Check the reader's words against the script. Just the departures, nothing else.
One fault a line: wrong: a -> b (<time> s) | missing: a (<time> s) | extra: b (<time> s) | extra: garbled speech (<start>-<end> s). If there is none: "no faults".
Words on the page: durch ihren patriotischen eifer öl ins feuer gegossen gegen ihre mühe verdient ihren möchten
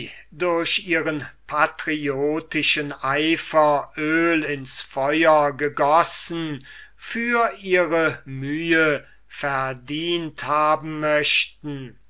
wrong: gegen -> für (6.9 s)
wrong: ihren -> haben (10.4 s)